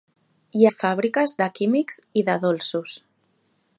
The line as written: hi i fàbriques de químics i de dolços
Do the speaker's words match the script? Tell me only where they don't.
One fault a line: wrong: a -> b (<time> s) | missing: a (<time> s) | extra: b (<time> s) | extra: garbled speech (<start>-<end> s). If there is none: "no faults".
no faults